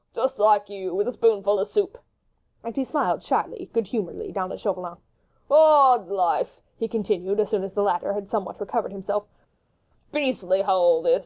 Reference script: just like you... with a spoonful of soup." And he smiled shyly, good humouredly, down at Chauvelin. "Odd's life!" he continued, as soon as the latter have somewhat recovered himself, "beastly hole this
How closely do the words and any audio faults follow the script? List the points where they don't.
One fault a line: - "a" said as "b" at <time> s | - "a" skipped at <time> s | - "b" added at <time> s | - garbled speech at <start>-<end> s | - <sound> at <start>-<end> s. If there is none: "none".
- "have" said as "had" at 8.1 s